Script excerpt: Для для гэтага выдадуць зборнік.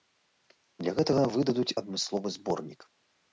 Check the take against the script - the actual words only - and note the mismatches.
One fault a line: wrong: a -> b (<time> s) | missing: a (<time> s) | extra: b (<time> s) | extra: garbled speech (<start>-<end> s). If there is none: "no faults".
missing: для (0.9 s)
extra: адмысловы (1.8 s)